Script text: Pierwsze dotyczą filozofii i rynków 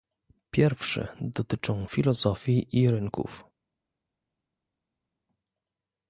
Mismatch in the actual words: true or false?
false